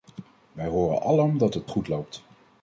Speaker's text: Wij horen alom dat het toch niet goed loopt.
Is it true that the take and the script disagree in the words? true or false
true